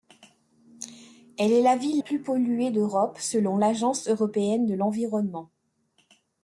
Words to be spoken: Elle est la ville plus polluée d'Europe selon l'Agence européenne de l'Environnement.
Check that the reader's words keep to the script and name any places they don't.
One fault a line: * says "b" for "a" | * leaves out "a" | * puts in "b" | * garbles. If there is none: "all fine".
all fine